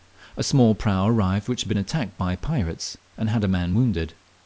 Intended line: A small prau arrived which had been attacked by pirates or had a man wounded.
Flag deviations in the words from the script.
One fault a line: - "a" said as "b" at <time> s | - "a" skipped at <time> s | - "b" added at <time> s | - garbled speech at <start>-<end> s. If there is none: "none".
- "or" said as "and" at 3.2 s